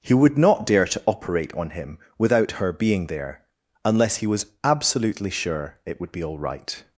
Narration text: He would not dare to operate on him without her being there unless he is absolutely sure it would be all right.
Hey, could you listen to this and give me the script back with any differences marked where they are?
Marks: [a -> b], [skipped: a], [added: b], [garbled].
He would not dare to operate on him without her being there unless he [is -> was] absolutely sure it would be all right.